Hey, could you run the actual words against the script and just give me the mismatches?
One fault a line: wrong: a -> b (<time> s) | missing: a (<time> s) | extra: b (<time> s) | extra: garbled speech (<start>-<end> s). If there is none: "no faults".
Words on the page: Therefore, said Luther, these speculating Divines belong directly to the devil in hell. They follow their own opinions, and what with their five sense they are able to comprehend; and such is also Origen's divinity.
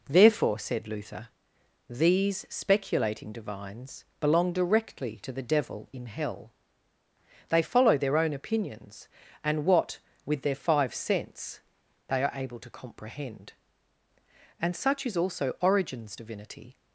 no faults